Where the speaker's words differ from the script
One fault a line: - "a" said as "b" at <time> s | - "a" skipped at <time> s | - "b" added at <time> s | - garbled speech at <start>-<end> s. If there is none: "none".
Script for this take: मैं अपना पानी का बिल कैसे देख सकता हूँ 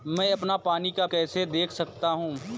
- "बिल" skipped at 1.1 s